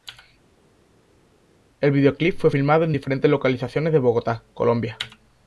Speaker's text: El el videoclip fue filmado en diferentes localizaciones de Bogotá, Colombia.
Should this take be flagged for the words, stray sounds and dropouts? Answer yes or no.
yes